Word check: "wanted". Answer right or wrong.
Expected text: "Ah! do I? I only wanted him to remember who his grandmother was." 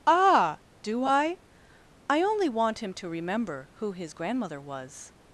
wrong